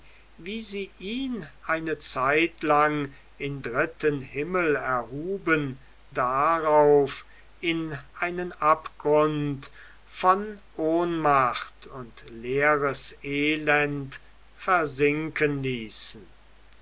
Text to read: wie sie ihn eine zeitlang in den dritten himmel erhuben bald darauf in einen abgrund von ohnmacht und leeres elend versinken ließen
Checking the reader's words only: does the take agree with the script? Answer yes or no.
no